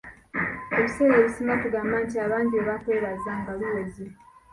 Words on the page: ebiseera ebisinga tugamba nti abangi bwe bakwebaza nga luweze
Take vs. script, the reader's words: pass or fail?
pass